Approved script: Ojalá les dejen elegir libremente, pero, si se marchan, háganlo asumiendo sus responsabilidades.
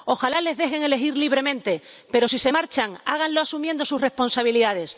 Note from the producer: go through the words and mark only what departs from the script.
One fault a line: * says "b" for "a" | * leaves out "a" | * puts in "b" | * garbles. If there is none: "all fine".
all fine